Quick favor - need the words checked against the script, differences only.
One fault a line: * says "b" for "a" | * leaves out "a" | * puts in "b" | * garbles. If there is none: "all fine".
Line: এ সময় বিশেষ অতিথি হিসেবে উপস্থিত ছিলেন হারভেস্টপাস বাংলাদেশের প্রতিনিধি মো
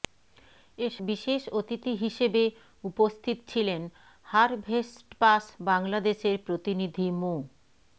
* leaves out "সময়"